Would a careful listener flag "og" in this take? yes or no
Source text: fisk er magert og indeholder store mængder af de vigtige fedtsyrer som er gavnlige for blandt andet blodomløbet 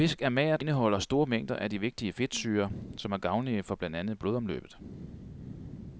yes